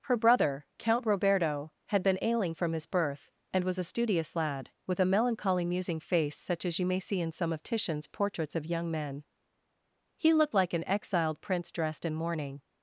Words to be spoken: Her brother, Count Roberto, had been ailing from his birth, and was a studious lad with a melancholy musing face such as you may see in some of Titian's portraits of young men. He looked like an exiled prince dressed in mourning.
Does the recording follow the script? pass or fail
pass